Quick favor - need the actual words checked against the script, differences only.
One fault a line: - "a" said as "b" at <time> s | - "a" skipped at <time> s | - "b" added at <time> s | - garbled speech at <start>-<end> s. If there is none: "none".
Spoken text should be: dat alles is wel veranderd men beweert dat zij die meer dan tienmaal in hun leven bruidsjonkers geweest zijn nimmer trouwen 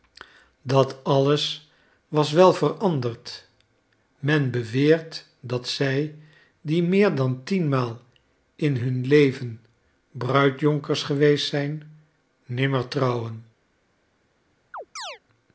- "is" said as "was" at 2.1 s